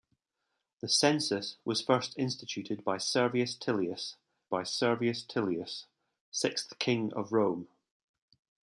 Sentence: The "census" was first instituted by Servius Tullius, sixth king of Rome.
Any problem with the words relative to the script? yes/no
yes